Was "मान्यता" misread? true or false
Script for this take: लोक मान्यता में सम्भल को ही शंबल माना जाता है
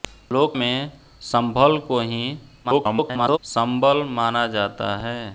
true